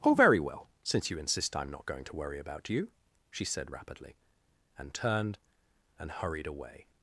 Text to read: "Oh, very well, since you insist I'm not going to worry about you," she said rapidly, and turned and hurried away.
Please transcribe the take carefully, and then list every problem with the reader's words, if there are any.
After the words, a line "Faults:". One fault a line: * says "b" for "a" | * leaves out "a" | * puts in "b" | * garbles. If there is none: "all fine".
"Oh, very well, since you insist I'm not going to worry about you," she said rapidly, and turned and hurried away.
Faults:
all fine